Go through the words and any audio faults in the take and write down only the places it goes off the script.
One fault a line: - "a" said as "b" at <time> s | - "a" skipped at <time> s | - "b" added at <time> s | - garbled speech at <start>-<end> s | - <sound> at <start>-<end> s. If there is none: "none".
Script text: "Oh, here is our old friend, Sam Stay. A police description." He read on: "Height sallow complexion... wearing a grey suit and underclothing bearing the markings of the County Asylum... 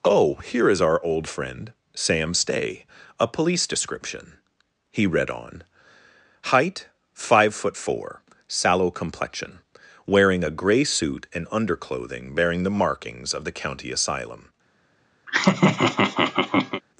- "five foot four" added at 7.1 s
- laugh at 15.3-16.8 s